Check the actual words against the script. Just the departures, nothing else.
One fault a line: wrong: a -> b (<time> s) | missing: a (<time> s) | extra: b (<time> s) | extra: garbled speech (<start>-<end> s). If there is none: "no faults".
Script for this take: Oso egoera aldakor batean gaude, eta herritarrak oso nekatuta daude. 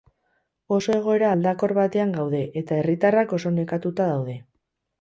no faults